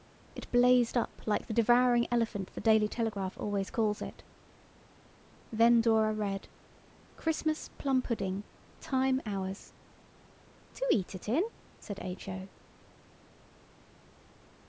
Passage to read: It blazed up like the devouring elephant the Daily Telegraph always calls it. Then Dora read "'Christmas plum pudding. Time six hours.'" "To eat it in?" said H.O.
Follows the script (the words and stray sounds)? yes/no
no